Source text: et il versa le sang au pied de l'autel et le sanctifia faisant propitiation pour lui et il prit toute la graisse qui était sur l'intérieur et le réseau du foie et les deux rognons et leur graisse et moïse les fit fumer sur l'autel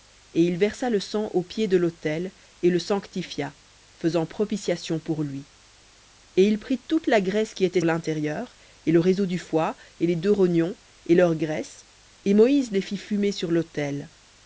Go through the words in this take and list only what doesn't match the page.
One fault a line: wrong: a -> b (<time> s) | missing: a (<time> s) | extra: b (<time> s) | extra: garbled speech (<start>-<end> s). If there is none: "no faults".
missing: sur (7.8 s)